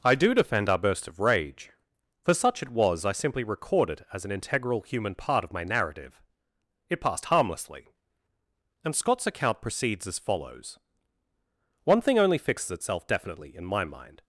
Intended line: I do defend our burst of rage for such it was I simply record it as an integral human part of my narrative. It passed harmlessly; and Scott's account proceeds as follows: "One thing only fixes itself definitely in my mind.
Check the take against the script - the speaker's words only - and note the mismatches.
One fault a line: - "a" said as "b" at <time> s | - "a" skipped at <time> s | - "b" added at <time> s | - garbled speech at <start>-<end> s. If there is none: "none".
none